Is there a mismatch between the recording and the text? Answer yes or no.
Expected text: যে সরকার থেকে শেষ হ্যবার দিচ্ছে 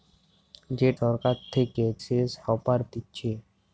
no